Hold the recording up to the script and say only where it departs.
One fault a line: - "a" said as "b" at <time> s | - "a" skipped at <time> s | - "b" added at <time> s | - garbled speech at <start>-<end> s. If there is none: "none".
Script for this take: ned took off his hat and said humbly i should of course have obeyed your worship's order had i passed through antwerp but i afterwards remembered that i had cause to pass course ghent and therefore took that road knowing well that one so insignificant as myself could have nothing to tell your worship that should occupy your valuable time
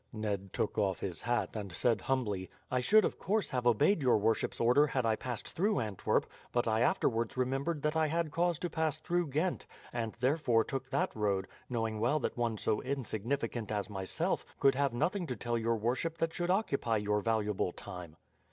- "course" said as "through" at 9.0 s